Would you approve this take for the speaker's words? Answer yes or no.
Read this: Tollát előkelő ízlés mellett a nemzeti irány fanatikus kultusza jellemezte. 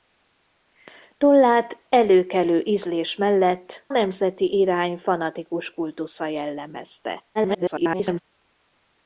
no